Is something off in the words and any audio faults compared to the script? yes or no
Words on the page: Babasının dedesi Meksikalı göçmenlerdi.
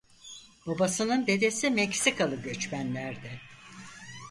no